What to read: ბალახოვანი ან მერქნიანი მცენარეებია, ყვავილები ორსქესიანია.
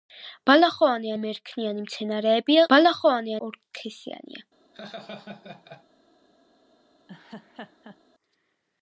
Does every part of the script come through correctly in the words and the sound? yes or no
no